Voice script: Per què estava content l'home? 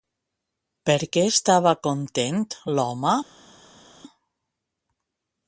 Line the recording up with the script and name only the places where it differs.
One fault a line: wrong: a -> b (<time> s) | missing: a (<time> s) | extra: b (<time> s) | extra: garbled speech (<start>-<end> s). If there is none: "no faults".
no faults